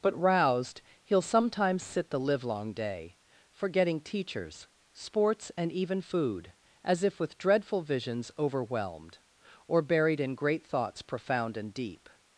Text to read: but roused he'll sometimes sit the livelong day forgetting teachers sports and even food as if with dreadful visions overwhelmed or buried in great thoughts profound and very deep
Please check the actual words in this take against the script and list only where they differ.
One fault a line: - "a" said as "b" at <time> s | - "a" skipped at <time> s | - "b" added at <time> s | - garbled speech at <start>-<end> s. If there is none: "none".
- "very" skipped at 11.7 s